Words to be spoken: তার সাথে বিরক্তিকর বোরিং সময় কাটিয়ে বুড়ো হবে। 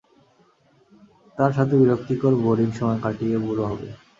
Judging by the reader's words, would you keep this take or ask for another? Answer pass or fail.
pass